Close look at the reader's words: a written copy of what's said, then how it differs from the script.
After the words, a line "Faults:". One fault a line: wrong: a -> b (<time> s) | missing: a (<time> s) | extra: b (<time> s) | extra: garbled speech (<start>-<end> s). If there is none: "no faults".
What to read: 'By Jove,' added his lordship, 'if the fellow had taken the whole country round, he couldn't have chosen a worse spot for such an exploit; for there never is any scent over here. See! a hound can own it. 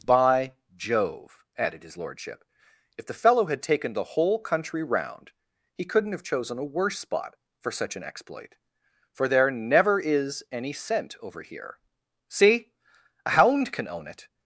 'By Jove,' added his lordship, 'if the fellow had taken the whole country round, he couldn't have chosen a worse spot for such an exploit; for there never is any scent over here. See! a hound can own it.
Faults:
no faults